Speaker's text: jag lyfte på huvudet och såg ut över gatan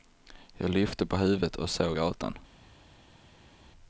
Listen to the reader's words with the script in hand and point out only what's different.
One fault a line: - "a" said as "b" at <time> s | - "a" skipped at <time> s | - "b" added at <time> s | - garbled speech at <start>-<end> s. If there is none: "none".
- "ut över" skipped at 2.0 s